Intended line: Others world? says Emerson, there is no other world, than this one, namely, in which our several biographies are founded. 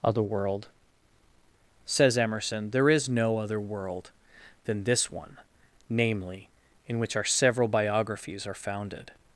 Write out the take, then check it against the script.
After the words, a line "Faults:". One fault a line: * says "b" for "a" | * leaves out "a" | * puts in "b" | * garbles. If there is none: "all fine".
Other world? says Emerson, there is no other world, than this one, namely, in which our several biographies are founded.
Faults:
* says "Other" for "Others"